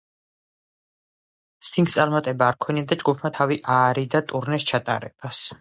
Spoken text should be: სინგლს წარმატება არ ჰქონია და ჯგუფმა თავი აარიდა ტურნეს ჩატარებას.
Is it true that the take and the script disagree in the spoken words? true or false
false